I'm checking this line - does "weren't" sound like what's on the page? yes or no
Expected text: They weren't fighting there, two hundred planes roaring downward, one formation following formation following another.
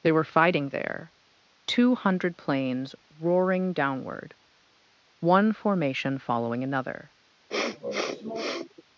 no